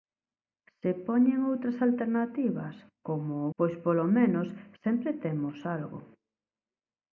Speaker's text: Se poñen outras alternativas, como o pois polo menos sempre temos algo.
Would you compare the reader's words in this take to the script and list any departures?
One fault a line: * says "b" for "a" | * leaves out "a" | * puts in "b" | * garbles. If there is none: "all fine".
all fine